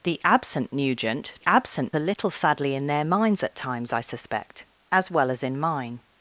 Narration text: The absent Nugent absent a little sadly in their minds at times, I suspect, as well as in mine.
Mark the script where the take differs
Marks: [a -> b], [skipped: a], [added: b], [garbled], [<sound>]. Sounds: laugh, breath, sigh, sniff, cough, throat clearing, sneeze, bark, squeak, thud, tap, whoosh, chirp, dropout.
The absent Nugent absent a little sadly in their minds at times, I suspect, as well as in mine.